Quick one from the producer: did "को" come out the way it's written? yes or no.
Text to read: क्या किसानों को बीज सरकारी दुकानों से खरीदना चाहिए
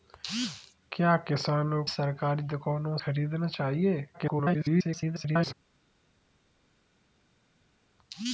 no